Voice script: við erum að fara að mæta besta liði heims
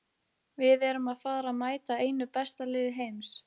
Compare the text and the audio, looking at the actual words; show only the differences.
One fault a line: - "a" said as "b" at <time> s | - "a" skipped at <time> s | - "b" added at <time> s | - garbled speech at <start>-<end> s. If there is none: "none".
- "einu" added at 2.0 s